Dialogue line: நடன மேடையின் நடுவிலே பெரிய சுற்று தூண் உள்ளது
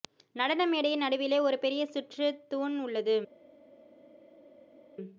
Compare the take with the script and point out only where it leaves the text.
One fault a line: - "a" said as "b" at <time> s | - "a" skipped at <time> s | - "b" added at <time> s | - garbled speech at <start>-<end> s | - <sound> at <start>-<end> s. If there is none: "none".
- "ஒரு" added at 1.4 s